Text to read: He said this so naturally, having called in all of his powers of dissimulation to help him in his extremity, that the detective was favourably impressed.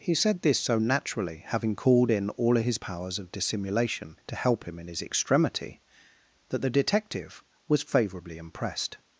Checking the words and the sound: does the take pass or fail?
pass